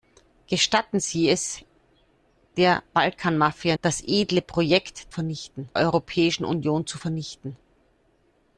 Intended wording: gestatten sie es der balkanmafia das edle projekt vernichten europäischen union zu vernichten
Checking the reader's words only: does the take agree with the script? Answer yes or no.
yes